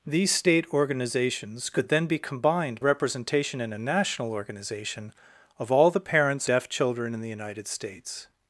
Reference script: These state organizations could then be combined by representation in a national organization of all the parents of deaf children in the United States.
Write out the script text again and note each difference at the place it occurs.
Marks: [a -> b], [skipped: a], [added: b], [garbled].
These state organizations could then be combined [skipped: by] representation in a national organization of all the parents [skipped: of] deaf children in the United States.